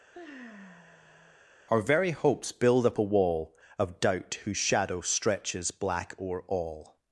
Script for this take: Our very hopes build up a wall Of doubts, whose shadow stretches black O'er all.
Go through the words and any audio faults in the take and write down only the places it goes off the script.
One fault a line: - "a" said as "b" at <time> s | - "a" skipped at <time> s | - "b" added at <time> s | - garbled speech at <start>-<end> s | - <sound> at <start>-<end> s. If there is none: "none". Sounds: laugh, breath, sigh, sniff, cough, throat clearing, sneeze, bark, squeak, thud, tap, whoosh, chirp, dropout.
- sigh at 0.1-1.4 s
- "doubts" said as "doubt" at 4.0 s